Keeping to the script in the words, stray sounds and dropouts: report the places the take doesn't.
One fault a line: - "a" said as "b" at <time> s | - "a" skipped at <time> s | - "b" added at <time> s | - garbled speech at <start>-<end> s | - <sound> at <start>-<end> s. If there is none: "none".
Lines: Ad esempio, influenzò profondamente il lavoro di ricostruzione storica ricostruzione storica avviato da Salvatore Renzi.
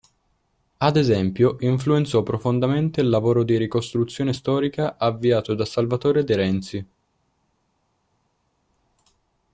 - "ricostruzione storica" skipped at 5.0 s
- "De" added at 6.2 s